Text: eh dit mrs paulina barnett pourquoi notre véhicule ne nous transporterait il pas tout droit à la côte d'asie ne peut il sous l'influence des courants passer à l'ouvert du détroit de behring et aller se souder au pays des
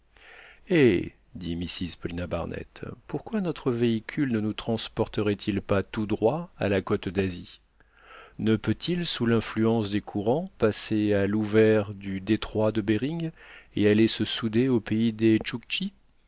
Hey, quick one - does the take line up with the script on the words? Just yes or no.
yes